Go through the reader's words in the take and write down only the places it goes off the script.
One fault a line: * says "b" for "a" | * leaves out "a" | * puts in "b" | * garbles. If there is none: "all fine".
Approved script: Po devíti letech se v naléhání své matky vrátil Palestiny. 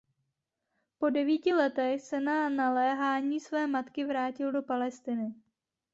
* says "na" for "v"
* puts in "do"